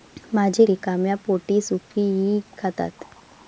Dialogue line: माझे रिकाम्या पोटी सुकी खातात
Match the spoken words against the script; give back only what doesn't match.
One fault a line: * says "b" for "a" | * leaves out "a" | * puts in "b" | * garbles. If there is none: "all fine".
all fine